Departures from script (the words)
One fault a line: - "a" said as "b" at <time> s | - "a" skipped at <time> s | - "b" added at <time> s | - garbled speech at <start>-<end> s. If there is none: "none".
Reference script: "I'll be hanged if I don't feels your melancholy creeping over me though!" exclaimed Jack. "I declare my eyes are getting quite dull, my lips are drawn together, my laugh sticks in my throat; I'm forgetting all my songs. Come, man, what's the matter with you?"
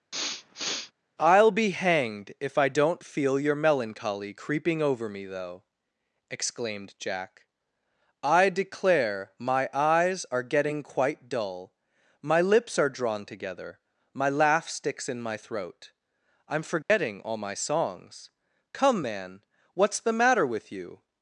- "feels" said as "feel" at 3.0 s